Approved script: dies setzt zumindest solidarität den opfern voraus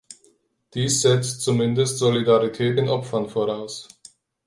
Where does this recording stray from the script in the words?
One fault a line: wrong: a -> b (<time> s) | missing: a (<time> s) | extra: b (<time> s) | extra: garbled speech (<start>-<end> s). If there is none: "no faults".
no faults